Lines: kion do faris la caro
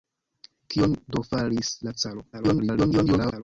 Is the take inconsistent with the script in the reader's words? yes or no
yes